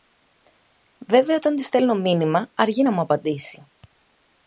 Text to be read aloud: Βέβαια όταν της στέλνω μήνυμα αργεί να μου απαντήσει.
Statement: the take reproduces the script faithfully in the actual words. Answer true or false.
true